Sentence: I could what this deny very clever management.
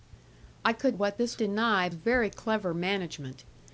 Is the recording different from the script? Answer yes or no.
no